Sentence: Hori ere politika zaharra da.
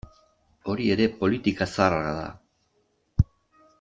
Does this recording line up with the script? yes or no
yes